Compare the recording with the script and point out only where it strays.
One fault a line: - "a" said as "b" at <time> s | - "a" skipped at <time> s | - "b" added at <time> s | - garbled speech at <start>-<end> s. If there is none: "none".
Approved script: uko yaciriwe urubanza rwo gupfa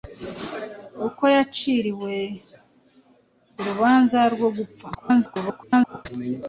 - garbled speech at 4.9-6.1 s